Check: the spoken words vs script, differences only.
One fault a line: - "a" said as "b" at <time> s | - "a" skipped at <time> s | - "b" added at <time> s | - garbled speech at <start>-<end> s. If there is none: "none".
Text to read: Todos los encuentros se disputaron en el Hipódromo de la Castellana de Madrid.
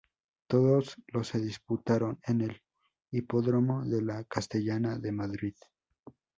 - "encuentros" skipped at 1.3 s